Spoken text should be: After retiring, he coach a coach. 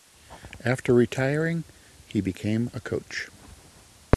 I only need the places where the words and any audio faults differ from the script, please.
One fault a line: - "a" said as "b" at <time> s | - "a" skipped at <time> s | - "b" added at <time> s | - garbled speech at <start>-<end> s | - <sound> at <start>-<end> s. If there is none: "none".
- "coach" said as "became" at 2.2 s